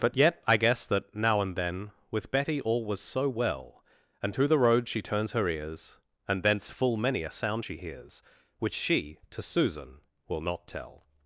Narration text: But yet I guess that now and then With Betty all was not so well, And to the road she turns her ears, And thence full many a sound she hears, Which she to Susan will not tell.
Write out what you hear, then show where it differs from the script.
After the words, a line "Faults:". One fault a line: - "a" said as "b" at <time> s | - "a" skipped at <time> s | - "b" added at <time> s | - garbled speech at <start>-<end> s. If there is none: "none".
But yet I guess that now and then With Betty all was so well, And to the road she turns her ears, And thence full many a sound she hears, Which she to Susan will not tell.
Faults:
- "not" skipped at 3.0 s